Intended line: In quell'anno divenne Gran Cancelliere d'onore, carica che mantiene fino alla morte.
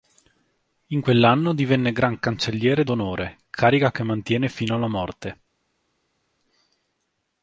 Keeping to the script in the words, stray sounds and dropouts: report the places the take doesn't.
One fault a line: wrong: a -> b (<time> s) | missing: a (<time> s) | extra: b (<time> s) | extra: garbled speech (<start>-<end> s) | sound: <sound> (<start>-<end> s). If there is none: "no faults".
no faults